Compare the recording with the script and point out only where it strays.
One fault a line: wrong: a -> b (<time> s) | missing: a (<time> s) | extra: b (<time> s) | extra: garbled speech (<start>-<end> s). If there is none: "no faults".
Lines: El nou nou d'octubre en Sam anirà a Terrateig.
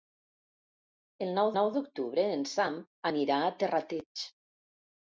no faults